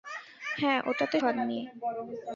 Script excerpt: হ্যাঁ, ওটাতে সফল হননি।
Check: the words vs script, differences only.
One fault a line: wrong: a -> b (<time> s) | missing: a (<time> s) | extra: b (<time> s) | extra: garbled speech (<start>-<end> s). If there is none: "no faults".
missing: সফল (1.2 s)